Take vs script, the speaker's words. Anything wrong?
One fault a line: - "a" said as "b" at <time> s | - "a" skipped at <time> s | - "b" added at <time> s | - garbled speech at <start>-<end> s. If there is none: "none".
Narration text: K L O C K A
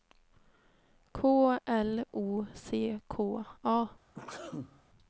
none